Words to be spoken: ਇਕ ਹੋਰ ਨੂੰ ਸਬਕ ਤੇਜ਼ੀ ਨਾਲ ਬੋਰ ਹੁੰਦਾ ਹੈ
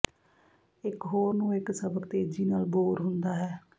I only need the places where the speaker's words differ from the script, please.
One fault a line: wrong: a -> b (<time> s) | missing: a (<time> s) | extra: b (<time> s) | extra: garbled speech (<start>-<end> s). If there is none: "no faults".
extra: ਇੱਕ (1.5 s)